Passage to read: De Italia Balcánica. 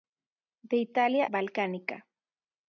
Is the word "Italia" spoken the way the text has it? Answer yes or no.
yes